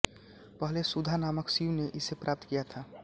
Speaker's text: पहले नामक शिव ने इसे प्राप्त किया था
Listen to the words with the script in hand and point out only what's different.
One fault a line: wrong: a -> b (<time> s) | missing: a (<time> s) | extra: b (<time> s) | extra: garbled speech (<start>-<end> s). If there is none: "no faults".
extra: सुधा (0.8 s)